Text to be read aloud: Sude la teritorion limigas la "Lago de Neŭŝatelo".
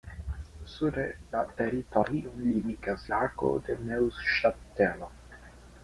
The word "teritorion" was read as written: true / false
true